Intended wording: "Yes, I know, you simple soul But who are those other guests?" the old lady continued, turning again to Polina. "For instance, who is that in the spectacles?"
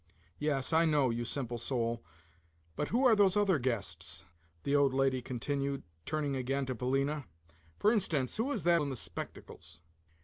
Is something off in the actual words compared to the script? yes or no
no